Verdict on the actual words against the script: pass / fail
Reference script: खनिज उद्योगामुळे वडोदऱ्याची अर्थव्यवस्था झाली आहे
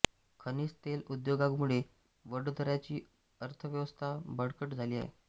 fail